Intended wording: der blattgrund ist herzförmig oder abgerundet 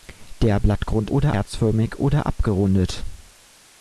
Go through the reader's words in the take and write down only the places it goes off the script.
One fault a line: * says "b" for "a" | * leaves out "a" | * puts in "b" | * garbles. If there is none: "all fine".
* says "oder" for "ist"